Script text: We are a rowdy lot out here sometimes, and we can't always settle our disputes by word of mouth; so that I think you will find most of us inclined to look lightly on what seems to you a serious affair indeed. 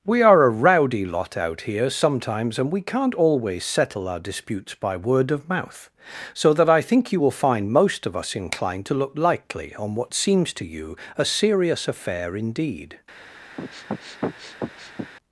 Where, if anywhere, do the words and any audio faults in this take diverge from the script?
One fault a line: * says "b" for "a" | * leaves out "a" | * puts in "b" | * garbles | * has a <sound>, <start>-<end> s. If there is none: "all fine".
* has a sniff, 13.6-15.1 s